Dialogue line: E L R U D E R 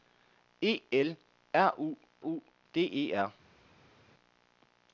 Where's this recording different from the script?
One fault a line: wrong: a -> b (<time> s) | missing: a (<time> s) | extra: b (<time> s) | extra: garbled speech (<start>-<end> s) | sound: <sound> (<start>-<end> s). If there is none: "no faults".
extra: U (2.2 s)